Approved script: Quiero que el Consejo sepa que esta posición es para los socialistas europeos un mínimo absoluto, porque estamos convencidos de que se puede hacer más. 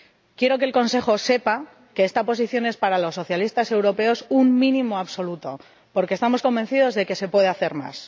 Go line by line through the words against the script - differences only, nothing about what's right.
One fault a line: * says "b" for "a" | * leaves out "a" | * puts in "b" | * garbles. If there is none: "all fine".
all fine